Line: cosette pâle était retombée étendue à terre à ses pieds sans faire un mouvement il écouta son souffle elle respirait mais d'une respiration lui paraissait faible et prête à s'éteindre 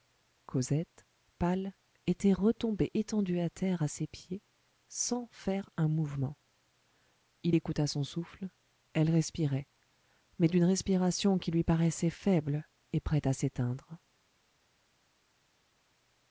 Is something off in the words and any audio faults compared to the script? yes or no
yes